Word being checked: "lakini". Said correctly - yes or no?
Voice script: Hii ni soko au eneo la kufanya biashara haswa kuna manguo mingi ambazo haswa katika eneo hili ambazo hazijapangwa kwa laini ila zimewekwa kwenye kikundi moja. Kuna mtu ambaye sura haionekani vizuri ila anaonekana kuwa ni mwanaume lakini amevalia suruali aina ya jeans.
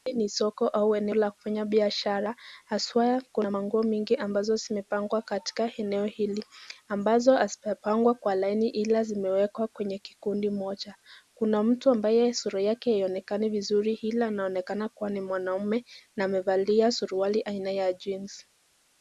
no